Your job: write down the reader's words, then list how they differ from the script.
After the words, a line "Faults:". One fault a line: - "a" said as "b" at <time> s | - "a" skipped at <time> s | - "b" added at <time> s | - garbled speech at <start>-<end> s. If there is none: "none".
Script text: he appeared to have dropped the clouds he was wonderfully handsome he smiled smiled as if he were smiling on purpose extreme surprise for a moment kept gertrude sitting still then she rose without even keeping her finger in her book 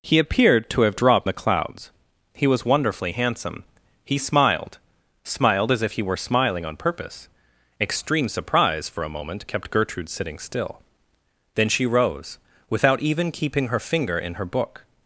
he appeared to have dropped the clouds he was wonderfully handsome he smiled smiled as if he were smiling on purpose extreme surprise for a moment kept gertrude sitting still then she rose without even keeping her finger in her book
Faults:
none